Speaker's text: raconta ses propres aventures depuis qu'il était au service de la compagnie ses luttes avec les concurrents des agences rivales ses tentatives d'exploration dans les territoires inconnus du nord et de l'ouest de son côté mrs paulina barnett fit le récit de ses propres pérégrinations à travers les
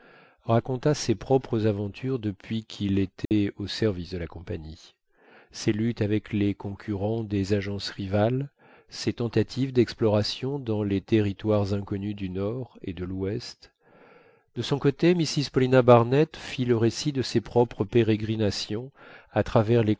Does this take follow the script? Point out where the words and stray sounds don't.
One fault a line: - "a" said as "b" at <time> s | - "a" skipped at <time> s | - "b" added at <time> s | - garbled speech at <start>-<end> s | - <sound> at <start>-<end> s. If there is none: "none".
- dropout at 3.2-3.3 s